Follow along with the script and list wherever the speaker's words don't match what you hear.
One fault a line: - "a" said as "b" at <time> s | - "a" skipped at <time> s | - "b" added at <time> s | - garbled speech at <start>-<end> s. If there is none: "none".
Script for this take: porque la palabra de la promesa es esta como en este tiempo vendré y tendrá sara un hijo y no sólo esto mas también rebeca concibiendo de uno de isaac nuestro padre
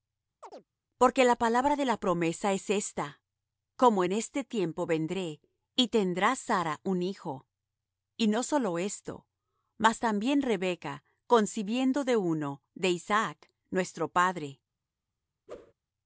none